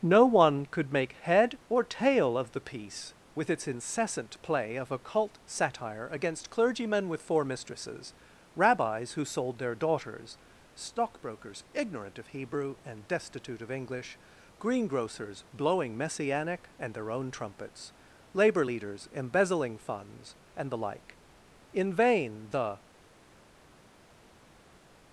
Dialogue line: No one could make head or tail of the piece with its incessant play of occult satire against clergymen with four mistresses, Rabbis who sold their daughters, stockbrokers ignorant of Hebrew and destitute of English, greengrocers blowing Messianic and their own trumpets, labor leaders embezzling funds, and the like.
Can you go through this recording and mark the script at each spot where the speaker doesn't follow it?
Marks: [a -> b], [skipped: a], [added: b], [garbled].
No one could make head or tail of the piece with its incessant play of occult satire against clergymen with four mistresses, Rabbis who sold their daughters, stockbrokers ignorant of Hebrew and destitute of English, greengrocers blowing Messianic and their own trumpets, labor leaders embezzling funds, and the like. [added: In vain the]